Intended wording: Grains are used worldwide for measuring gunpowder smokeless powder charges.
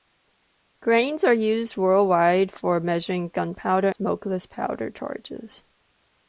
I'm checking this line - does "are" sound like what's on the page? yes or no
yes